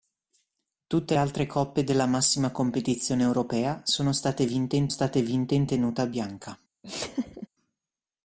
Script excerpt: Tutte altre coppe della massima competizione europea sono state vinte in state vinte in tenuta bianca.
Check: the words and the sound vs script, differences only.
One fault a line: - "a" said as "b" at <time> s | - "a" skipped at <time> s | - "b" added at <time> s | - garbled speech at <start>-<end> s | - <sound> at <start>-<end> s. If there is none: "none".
- laugh at 6.8-7.5 s